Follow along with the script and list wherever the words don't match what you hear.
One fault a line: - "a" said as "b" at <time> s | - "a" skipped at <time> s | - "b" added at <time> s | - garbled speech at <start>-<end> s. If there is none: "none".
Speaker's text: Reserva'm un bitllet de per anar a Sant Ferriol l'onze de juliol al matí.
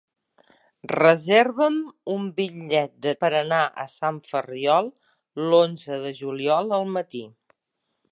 none